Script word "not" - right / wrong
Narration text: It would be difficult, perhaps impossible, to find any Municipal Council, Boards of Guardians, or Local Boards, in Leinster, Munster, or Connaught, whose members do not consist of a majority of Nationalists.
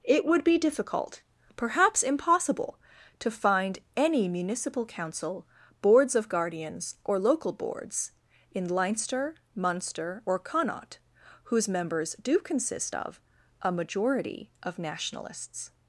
wrong